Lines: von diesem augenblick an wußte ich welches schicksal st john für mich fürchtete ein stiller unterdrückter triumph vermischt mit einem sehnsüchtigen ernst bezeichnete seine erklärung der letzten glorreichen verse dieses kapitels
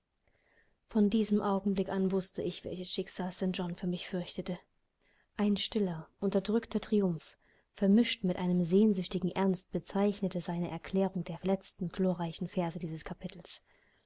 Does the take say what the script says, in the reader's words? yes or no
yes